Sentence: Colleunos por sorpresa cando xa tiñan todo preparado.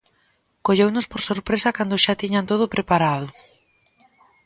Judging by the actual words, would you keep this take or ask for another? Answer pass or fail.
pass